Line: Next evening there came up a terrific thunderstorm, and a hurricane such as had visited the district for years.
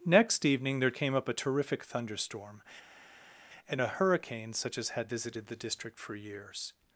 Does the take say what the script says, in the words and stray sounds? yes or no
yes